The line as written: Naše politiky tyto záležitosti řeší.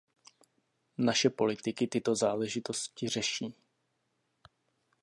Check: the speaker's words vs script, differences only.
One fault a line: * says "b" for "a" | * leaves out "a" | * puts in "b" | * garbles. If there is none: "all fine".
all fine